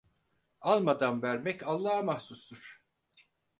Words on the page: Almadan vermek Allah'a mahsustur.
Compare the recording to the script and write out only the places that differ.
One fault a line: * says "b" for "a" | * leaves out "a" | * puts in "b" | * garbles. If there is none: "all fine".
all fine